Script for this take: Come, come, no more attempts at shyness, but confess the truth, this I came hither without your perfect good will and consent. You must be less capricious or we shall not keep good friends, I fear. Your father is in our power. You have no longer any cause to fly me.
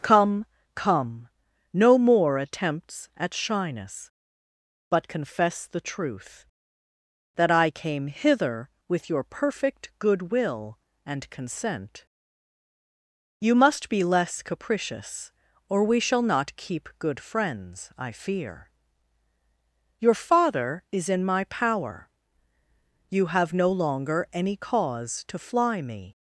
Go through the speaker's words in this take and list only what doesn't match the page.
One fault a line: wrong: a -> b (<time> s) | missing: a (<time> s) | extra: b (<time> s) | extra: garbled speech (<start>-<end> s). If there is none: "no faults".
wrong: this -> that (7.3 s)
wrong: without -> with (8.9 s)
wrong: our -> my (21.2 s)